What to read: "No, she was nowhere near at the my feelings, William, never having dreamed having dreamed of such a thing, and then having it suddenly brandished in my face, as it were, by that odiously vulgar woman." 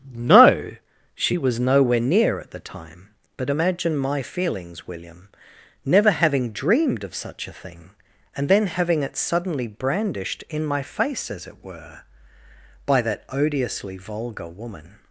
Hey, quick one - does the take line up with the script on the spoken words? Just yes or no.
no